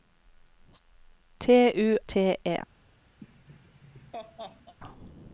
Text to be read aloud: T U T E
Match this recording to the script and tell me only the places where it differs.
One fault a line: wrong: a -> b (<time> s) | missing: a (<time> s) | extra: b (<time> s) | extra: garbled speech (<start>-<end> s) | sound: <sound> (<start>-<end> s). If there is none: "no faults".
sound: laugh (3.2-4.7 s)